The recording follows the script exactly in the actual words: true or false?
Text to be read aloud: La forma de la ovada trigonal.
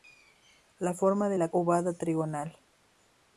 true